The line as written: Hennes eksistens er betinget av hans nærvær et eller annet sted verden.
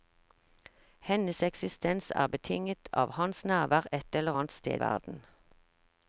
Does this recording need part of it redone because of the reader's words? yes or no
no